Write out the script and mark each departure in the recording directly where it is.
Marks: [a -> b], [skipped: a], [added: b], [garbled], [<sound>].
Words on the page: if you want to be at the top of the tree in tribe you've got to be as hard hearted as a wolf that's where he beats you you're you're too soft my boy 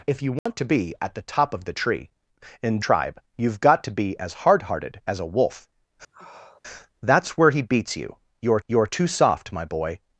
if you want [dropout] to be at the top of the tree in tribe you've got to be as hard hearted as a wolf [sniff] that's where he beats you you're you're too soft my boy